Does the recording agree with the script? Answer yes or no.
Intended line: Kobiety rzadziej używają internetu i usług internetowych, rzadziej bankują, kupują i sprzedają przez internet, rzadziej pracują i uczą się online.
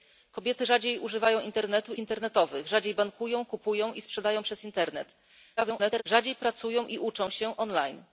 no